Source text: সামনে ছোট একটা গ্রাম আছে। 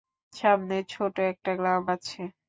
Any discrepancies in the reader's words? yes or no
no